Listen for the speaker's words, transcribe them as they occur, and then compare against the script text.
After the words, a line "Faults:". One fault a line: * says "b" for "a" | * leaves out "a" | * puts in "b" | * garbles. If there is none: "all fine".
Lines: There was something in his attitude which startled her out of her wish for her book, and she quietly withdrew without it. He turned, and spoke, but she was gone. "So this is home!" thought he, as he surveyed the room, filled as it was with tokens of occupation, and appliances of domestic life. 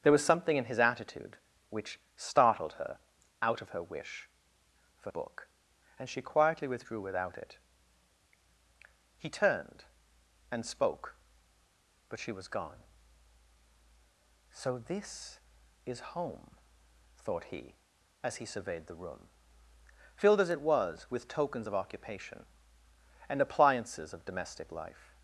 There was something in his attitude which startled her out of her wish for book, and she quietly withdrew without it. He turned, and spoke, but she was gone. "So this is home!" thought he, as he surveyed the room, filled as it was with tokens of occupation, and appliances of domestic life.
Faults:
* leaves out "her"